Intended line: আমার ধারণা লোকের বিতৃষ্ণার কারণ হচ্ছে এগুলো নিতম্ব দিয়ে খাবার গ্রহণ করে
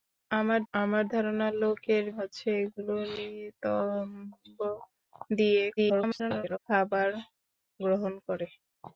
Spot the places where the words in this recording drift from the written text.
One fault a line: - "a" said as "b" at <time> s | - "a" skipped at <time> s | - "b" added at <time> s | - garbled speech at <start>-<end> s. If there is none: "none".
- "আমার" added at 0.7 s
- "বিতৃষ্ণার কারণ" skipped at 2.0 s
- garbled speech at 5.8-6.6 s